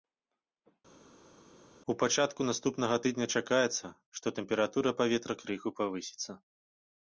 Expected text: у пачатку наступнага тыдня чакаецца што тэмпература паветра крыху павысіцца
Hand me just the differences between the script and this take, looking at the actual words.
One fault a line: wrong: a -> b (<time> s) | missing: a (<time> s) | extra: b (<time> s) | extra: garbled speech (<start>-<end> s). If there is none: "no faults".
no faults